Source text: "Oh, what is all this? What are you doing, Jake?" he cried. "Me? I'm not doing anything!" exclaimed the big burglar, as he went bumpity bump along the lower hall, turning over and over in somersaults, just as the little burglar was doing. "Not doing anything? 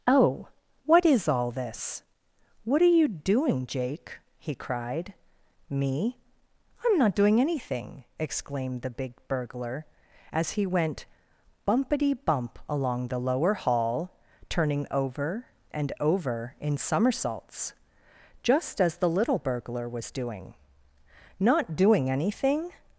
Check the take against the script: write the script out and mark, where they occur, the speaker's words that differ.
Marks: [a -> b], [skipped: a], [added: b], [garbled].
"Oh, what is all this? What are you doing, Jake?" he cried. "Me? I'm not doing anything!" exclaimed the big burglar, as he went bumpity bump along the lower hall, turning over and over in somersaults, just as the little burglar was doing. "Not doing anything?